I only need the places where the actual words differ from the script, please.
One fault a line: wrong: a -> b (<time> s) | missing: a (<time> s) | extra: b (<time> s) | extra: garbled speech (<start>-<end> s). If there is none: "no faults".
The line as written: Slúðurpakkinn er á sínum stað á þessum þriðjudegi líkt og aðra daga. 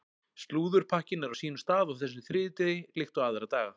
no faults